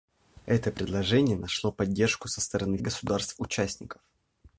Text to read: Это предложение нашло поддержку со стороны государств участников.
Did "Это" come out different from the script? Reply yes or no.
no